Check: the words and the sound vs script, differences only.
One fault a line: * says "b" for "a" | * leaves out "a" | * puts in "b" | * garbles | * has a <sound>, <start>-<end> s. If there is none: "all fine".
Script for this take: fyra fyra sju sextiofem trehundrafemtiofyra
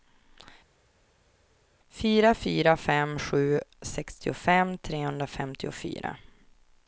* puts in "fem"